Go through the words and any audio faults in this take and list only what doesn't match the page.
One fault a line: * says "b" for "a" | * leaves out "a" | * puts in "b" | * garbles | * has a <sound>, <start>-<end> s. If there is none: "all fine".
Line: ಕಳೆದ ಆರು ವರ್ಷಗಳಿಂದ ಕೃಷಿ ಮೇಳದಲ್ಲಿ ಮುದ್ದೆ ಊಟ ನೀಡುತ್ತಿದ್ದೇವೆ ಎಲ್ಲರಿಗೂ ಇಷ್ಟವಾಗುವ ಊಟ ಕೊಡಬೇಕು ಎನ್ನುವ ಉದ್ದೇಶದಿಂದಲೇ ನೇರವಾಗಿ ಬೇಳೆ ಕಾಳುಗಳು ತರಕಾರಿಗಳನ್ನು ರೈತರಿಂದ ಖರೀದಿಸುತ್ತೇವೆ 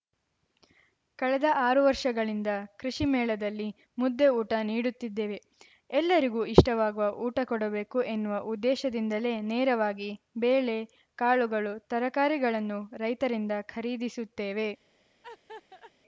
* has a laugh, 15.2-15.9 s